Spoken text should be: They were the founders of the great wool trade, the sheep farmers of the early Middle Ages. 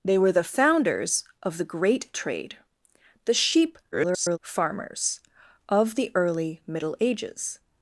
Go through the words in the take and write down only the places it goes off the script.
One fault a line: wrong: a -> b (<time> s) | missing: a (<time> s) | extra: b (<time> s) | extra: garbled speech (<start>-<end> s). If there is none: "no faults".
missing: wool (2.1 s)
extra: garbled speech (3.9-4.4 s)